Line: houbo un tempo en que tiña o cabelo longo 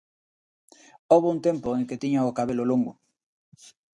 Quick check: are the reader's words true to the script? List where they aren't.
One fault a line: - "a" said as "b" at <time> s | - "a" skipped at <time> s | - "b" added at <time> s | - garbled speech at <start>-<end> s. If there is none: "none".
none